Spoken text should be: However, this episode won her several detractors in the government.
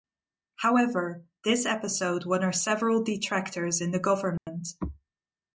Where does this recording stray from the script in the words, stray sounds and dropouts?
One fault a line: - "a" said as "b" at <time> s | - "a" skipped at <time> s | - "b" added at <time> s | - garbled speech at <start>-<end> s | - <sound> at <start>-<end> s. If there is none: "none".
- dropout at 4.4-4.5 s